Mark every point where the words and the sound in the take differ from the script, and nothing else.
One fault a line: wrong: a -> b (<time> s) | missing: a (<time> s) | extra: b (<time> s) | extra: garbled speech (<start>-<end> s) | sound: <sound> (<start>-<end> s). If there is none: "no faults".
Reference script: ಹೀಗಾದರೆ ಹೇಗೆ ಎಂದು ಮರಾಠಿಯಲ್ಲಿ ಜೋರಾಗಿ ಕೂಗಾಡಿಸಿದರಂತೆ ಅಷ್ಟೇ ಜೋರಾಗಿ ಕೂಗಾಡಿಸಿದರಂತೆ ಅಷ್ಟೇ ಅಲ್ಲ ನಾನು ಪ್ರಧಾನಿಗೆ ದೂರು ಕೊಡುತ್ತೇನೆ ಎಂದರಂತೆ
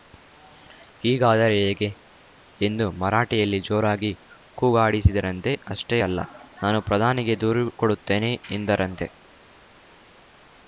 missing: ಜೋರಾಗಿ ಕೂಗಾಡಿಸಿದರಂತೆ ಅಷ್ಟೇ (6.0 s)